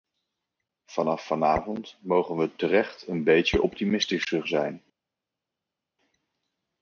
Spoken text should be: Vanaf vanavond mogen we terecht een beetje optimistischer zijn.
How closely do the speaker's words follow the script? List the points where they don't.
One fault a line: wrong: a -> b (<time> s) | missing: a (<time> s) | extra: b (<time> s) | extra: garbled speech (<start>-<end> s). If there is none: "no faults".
no faults